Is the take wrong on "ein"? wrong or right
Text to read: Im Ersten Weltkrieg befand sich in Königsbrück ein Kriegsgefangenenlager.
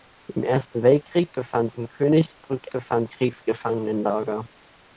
wrong